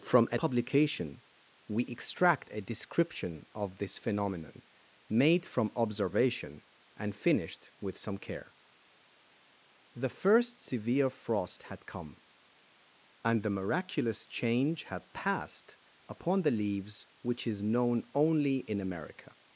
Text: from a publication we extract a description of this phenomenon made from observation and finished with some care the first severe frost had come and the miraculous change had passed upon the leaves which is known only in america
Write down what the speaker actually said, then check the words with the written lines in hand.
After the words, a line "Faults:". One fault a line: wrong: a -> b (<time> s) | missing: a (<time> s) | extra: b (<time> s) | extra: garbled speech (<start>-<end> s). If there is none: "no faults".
from a publication we extract a description of this phenomenon made from observation and finished with some care the first severe frost had come and the miraculous change had passed upon the leaves which is known only in america
Faults:
no faults